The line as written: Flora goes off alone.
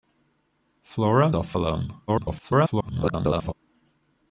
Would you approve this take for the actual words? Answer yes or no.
no